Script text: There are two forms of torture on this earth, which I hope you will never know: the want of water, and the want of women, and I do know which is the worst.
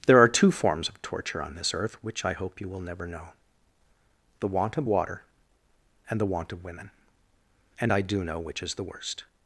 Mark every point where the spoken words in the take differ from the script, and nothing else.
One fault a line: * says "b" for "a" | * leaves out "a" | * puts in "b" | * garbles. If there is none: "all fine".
all fine